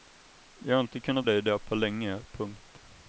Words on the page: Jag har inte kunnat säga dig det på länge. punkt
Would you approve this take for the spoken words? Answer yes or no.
no